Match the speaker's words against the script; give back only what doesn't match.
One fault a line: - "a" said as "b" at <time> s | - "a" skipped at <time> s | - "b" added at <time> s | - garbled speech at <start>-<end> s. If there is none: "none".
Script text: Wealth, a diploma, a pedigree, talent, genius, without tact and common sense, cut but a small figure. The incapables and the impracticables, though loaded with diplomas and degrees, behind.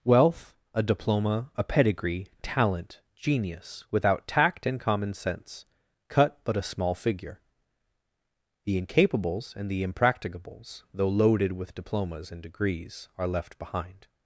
- "are left" added at 13.2 s